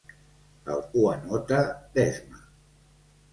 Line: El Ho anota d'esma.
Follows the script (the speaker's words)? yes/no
yes